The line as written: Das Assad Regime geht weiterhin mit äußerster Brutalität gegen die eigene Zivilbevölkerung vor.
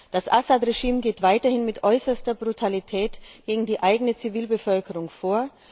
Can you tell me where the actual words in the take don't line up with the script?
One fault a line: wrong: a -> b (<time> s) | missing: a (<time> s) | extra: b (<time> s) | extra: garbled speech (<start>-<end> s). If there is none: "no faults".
no faults